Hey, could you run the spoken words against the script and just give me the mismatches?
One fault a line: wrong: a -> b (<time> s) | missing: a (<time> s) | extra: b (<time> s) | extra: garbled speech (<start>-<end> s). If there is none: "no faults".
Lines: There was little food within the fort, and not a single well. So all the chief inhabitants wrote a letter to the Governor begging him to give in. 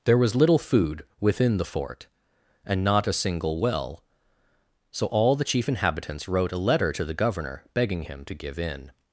no faults